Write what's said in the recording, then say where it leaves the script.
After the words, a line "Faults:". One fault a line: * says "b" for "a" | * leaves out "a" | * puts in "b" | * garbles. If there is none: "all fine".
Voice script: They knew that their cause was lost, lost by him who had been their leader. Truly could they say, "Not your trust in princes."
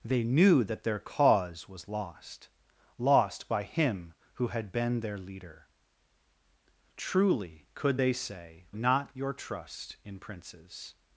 They knew that their cause was lost, lost by him who had been their leader. Truly could they say, "Not your trust in princes."
Faults:
all fine